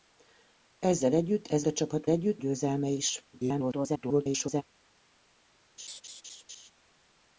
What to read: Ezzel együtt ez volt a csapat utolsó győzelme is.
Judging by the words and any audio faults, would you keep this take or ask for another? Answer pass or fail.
fail